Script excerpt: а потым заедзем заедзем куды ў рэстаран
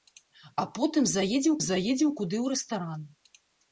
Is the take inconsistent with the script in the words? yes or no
no